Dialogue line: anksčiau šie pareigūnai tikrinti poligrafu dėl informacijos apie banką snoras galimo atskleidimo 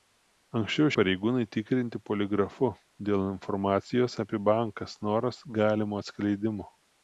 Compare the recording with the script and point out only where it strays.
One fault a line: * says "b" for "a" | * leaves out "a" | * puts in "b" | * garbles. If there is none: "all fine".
* leaves out "šie"